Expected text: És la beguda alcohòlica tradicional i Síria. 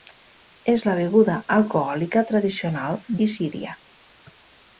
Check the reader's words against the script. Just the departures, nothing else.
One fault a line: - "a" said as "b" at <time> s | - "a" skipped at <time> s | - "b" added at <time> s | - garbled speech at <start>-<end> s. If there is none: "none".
none